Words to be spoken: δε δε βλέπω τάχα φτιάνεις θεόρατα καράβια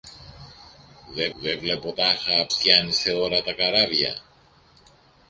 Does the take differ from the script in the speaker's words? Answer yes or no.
no